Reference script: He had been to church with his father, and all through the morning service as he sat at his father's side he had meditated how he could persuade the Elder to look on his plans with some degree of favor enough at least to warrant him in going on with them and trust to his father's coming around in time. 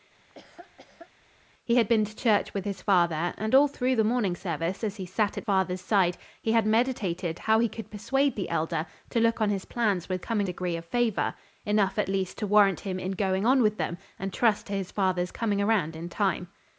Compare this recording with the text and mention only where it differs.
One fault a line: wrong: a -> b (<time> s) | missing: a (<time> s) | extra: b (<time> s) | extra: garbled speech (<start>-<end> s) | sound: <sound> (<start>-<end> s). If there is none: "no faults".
sound: laugh (0.2-1.1 s)
missing: his (5.5 s)
wrong: some -> coming (10.2 s)